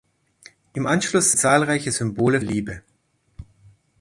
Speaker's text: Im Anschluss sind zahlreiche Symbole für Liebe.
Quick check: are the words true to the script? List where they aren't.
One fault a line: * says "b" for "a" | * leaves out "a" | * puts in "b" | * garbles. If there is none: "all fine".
* leaves out "sind"
* leaves out "für"